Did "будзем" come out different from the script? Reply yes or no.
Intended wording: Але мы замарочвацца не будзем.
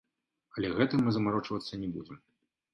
no